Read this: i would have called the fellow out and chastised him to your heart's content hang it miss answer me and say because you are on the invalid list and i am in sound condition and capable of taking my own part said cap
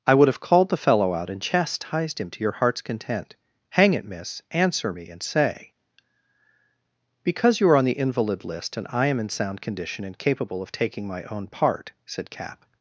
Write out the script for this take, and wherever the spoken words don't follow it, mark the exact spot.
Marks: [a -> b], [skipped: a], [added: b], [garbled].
i would have called the fellow out and chastised him to your heart's content hang it miss answer me and say because you are on the invalid list and i am in sound condition and capable of taking my own part said cap